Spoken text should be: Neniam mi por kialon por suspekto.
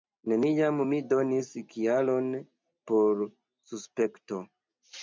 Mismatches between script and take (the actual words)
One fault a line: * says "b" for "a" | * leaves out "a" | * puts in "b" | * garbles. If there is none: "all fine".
* says "donis" for "por"